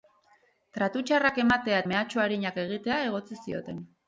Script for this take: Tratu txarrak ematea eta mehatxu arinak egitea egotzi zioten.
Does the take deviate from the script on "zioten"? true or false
false